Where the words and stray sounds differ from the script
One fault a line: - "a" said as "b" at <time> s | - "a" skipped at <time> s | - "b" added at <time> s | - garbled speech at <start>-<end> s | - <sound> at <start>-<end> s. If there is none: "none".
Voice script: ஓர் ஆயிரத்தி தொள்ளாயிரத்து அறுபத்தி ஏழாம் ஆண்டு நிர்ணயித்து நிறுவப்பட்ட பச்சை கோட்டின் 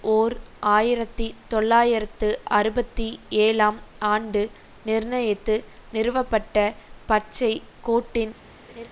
- laugh at 8.7-8.9 s